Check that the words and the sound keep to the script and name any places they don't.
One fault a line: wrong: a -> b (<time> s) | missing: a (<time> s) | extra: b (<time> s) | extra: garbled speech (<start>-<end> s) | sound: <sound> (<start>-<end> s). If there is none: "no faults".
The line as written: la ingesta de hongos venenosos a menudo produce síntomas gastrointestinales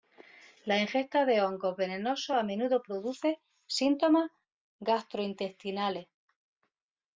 no faults